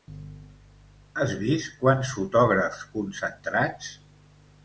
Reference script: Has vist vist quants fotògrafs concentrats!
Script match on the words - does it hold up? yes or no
no